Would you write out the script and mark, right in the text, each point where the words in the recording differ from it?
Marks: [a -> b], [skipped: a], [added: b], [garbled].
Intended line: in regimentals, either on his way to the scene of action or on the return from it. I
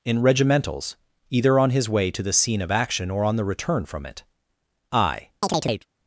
in regimentals, either on his way to the scene of action or on the return from it. I